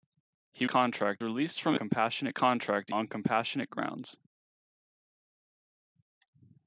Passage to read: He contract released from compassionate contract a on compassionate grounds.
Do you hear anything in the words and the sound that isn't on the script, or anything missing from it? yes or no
no